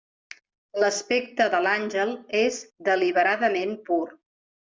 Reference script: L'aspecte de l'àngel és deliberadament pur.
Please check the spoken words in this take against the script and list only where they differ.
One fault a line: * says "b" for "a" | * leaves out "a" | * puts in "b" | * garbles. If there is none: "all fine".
all fine